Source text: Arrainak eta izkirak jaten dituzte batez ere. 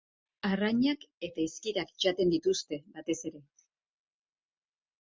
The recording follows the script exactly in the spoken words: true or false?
true